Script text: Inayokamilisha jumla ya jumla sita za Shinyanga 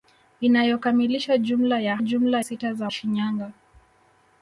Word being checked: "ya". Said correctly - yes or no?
yes